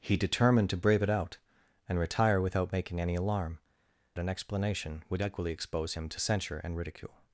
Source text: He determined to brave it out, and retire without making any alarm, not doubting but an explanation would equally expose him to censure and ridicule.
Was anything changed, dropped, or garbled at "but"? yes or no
yes